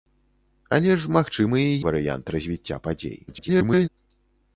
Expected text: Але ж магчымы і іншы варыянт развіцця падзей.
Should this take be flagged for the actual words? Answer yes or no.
yes